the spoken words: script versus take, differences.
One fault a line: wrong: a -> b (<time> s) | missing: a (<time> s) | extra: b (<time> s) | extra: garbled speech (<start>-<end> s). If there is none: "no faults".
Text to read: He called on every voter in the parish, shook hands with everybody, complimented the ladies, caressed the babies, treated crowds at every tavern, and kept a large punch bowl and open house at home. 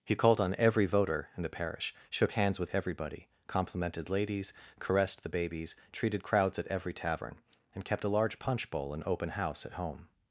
missing: the (4.1 s)